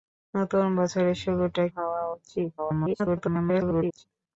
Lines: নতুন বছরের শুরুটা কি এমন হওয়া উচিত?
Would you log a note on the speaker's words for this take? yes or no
yes